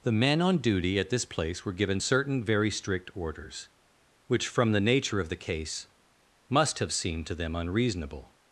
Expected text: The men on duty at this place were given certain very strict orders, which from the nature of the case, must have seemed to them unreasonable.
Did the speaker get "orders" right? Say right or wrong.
right